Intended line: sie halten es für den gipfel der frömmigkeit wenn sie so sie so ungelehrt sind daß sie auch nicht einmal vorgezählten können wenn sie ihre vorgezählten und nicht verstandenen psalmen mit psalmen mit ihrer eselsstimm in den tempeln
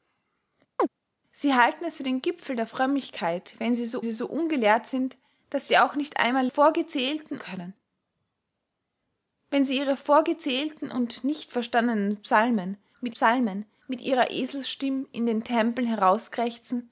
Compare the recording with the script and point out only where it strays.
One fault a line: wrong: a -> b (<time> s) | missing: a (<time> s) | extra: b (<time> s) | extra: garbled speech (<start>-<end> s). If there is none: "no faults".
no faults